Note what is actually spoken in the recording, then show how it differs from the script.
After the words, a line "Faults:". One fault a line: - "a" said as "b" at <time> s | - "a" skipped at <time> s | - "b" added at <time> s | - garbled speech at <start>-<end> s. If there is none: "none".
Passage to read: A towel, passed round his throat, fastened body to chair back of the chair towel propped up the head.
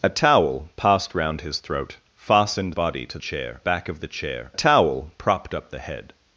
A towel, passed round his throat, fastened body to chair back of the chair towel propped up the head.
Faults:
none